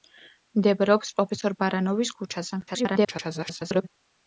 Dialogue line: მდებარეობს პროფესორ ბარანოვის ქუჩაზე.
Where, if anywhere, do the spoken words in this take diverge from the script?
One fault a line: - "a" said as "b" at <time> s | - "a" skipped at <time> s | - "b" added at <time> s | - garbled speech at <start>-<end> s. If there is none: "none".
- garbled speech at 2.7-3.9 s